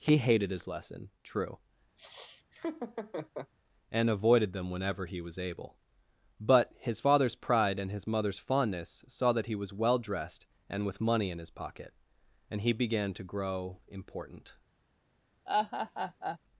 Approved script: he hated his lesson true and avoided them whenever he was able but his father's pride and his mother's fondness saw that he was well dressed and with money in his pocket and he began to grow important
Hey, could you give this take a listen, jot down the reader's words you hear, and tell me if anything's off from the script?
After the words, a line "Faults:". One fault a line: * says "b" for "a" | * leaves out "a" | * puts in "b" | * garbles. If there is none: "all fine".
he hated his lesson true and avoided them whenever he was able but his father's pride and his mother's fondness saw that he was well dressed and with money in his pocket and he began to grow important
Faults:
all fine